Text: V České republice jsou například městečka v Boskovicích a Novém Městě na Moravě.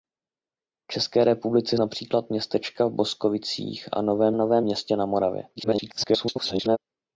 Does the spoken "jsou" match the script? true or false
false